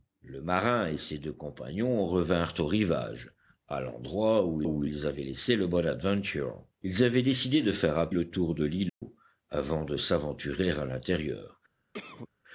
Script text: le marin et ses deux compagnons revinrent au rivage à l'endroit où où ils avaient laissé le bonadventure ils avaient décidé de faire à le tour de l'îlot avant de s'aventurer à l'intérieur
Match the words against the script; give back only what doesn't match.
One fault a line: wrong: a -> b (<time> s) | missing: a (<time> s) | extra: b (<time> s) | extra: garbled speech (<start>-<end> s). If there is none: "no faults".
no faults